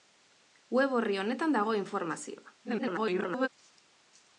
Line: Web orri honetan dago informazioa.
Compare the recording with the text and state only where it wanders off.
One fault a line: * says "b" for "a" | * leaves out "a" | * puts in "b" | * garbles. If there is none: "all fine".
* garbles